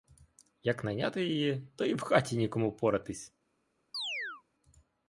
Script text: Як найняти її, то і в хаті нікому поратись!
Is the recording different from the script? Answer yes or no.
no